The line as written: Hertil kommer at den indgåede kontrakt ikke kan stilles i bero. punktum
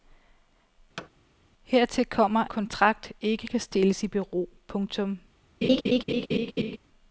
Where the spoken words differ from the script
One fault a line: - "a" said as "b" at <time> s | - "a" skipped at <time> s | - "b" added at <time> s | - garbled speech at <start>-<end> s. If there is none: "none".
- "at den indgåede" skipped at 2.4 s